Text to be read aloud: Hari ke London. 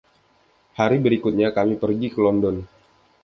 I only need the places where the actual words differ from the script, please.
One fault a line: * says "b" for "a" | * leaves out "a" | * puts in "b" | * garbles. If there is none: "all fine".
* puts in "berikutnya kami pergi"